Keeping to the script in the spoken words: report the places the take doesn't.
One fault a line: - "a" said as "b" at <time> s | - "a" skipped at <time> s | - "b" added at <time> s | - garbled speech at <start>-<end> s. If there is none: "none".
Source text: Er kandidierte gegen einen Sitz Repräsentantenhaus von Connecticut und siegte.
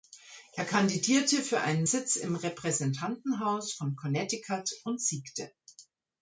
- "gegen" said as "für" at 1.4 s
- "im" added at 2.1 s